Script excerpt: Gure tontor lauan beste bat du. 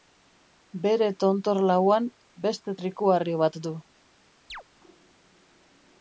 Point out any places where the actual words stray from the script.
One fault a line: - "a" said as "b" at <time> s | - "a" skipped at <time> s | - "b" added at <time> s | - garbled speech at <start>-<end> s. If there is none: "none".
- "Gure" said as "Bere" at 0.8 s
- "trikuharri" added at 2.8 s